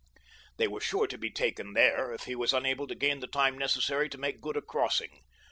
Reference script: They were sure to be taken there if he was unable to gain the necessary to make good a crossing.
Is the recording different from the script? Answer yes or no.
yes